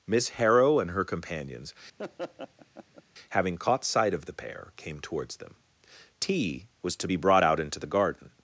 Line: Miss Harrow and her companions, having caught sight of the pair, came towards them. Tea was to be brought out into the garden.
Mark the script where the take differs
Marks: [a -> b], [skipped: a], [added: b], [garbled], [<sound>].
Miss Harrow and her companions, [laugh] having caught sight of the pair, came towards them. Tea was to be brought out into the garden.